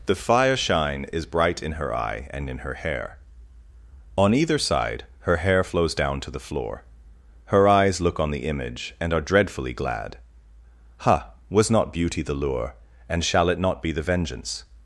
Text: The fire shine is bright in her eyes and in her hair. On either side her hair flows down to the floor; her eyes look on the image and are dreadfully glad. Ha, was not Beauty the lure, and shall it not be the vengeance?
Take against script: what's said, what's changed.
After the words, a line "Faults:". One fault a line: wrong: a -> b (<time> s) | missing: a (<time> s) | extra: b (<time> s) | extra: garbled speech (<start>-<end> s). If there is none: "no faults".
The fire shine is bright in her eye and in her hair. On either side her hair flows down to the floor; her eyes look on the image and are dreadfully glad. Ha, was not Beauty the lure, and shall it not be the vengeance?
Faults:
wrong: eyes -> eye (1.9 s)